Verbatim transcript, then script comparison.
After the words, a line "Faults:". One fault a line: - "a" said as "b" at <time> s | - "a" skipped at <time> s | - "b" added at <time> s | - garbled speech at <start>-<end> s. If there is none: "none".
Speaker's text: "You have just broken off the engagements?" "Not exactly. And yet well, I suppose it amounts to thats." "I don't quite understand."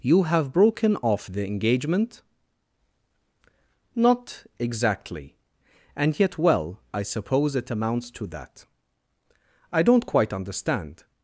"You have broken off the engagement?" "Not exactly. And yet well, I suppose it amounts to that." "I don't quite understand."
Faults:
- "just" skipped at 0.5 s
- "engagements" said as "engagement" at 1.5 s
- "thats" said as "that" at 8.3 s